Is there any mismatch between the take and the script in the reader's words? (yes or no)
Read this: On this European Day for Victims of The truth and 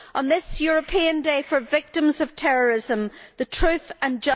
yes